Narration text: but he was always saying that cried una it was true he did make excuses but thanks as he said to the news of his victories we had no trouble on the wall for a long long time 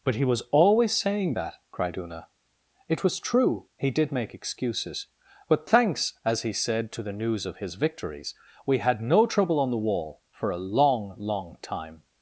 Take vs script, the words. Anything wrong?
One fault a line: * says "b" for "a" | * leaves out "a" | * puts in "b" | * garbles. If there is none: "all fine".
all fine